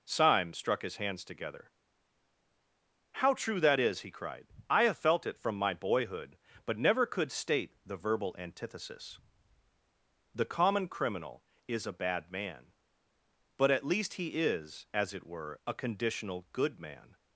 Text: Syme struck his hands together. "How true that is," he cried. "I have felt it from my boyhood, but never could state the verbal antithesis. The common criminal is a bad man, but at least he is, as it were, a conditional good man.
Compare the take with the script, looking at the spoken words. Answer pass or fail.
pass